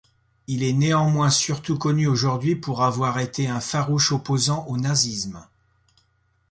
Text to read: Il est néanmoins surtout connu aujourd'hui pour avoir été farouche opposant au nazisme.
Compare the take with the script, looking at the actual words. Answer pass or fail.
fail